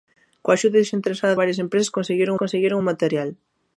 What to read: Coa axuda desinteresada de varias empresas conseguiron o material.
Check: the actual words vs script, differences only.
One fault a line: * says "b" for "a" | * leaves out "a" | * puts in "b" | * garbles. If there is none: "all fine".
* leaves out "de"
* puts in "conseguiron"